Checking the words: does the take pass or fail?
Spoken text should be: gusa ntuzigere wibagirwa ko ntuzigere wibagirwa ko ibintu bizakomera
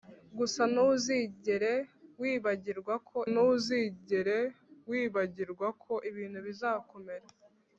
pass